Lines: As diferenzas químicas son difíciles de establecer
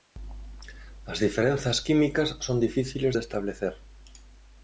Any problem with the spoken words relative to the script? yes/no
no